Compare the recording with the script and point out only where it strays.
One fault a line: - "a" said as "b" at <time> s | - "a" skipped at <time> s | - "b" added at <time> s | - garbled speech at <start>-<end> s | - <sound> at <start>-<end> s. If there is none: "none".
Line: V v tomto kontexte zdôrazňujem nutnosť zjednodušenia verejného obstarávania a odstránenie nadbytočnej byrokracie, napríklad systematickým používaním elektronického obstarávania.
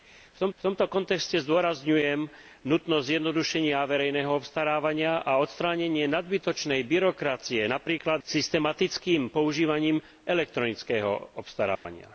- dropout at 11.8-11.9 s